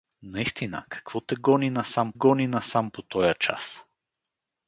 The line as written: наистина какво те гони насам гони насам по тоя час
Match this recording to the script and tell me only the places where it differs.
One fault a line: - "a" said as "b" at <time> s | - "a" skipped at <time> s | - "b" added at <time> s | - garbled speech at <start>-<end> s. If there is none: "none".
none